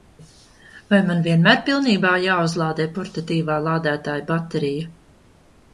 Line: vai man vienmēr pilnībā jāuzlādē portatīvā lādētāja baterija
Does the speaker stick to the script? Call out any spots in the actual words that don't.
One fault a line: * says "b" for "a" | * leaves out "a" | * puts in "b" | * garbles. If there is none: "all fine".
all fine